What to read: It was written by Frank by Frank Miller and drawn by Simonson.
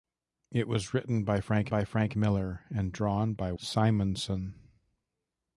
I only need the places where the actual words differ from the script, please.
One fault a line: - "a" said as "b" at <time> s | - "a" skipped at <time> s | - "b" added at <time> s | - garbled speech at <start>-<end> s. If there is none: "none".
none